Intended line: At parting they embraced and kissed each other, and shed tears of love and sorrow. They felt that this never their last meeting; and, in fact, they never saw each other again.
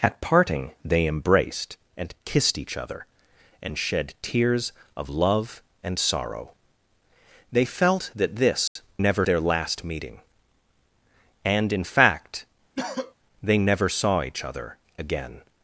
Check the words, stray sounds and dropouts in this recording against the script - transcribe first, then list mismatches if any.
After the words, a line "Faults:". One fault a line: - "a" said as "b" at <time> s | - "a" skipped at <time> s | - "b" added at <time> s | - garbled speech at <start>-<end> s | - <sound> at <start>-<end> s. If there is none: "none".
At parting they embraced and kissed each other, and shed tears of love and sorrow. They felt that this never their last meeting; and, in fact, they never saw each other again.
Faults:
- dropout at 8.7-8.8 s
- cough at 12.8-13.1 s